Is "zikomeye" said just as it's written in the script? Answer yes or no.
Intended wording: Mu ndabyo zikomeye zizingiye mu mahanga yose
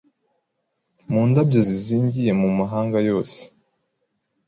no